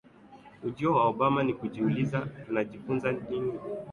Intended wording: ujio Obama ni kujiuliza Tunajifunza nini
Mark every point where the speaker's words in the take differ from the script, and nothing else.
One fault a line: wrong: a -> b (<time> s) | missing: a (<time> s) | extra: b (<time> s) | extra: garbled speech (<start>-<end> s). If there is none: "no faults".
extra: wa (0.9 s)